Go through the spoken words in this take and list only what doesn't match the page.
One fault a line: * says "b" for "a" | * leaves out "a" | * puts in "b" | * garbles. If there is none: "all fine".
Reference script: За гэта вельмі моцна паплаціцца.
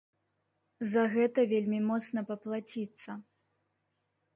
all fine